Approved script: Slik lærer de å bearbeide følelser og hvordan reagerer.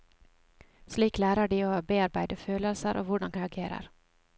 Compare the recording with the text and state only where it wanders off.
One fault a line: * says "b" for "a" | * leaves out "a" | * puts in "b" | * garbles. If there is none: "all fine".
all fine